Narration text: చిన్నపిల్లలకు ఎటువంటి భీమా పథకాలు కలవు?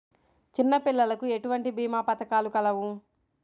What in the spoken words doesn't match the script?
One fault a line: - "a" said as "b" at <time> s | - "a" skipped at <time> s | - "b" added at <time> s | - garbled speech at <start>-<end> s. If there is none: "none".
none